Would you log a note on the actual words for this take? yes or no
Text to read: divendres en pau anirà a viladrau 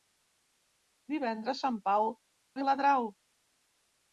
yes